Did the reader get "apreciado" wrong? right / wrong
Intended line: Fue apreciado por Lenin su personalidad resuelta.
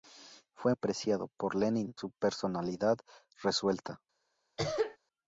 right